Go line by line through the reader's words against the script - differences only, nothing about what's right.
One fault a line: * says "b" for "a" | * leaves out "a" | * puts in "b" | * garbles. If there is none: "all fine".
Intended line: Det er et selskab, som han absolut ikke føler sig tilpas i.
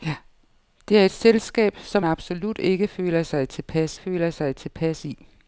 * leaves out "han"
* puts in "føler sig tilpas"